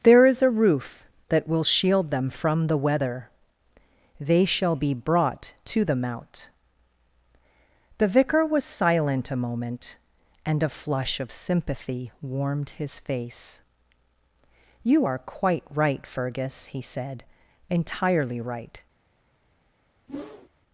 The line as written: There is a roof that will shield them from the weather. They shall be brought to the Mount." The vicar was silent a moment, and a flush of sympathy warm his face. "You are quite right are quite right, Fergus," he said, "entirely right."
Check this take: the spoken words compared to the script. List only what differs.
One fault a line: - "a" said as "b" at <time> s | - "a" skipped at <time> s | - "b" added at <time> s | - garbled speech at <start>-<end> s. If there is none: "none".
- "warm" said as "warmed" at 12.2 s
- "are quite right" skipped at 16.1 s